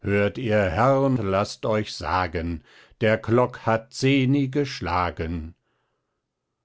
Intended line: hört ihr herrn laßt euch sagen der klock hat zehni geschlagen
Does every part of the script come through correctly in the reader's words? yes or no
yes